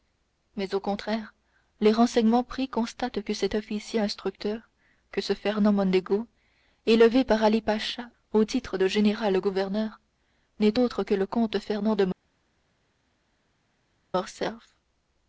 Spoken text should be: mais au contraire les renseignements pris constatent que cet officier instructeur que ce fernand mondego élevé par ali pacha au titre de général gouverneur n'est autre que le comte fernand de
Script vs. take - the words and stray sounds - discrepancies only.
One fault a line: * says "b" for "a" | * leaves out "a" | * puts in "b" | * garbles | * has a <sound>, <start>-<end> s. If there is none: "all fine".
all fine